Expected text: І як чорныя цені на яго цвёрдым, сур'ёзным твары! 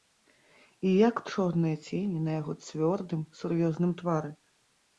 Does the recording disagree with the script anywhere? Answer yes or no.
no